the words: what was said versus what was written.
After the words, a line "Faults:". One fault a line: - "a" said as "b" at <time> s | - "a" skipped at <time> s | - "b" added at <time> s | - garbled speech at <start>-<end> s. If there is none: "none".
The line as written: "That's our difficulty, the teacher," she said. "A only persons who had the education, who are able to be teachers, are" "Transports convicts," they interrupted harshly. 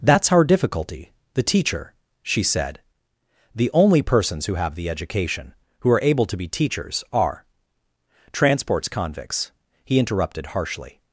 "That's our difficulty, the teacher," she said. "The only persons who have the education, who are able to be teachers, are" "Transports convicts," he interrupted harshly.
Faults:
- "A" said as "The" at 3.5 s
- "had" said as "have" at 4.5 s
- "they" said as "he" at 9.8 s